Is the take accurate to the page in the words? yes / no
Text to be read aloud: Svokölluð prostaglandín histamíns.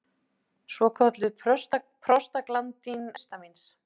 yes